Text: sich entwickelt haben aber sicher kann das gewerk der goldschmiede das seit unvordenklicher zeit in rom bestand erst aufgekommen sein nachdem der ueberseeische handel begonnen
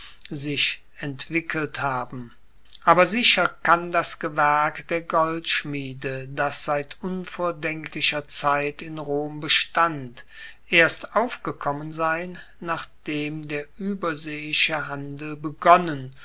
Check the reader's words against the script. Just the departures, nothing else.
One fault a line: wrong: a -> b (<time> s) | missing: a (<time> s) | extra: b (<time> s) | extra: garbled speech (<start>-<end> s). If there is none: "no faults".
no faults